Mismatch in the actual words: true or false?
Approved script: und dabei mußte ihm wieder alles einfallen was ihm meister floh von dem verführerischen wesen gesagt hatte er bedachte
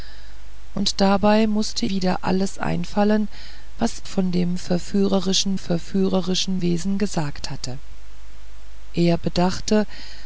true